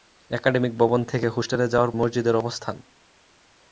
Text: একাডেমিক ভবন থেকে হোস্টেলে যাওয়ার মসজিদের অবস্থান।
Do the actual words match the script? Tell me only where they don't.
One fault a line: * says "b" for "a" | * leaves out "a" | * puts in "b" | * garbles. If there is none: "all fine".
all fine